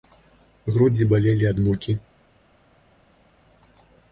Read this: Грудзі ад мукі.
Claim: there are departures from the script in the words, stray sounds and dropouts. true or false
true